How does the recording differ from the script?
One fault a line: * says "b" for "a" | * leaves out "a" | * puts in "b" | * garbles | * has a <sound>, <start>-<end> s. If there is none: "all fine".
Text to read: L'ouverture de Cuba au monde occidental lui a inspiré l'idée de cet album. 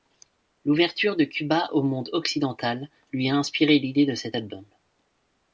all fine